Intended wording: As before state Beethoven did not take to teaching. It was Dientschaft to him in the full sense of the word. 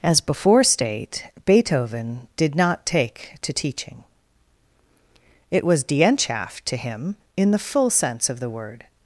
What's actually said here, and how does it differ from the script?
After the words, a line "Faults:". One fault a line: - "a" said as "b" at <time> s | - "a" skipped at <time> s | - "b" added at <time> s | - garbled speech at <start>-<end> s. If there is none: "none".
As before state Beethoven did not take to teaching. It was Dientschaft to him in the full sense of the word.
Faults:
none